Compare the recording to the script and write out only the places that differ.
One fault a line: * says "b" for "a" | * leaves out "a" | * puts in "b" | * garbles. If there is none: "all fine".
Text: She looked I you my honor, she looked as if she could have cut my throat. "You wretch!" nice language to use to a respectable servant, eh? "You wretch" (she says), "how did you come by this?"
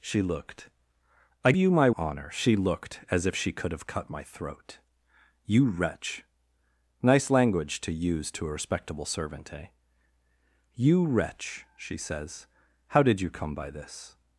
all fine